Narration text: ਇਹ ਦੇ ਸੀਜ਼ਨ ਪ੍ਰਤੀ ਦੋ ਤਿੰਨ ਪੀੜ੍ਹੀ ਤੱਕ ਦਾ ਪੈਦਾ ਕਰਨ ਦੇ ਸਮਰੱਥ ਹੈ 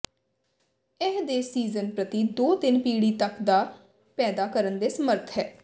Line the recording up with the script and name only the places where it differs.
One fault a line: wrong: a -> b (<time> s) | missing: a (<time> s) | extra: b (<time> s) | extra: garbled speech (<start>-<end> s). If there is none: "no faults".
no faults